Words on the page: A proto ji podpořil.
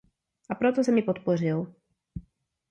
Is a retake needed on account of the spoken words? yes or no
yes